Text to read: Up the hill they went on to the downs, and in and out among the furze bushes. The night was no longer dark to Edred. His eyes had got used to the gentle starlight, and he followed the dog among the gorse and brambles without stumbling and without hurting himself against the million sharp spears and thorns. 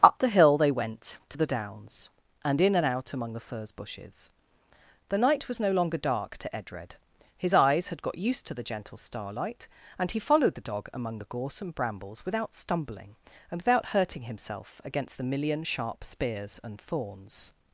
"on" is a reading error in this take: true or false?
true